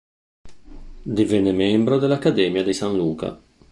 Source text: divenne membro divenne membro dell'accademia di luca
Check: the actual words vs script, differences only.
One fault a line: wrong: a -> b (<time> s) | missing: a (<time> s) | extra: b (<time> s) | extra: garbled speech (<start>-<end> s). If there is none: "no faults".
missing: divenne membro (2.0 s)
extra: san (2.7 s)